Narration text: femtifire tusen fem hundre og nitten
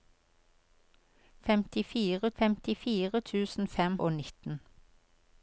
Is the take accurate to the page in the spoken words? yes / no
no